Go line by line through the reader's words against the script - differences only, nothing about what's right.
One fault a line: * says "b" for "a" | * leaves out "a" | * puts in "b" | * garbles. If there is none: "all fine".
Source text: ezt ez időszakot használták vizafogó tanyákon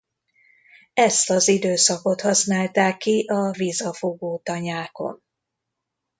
* says "az" for "ez"
* puts in "ki a"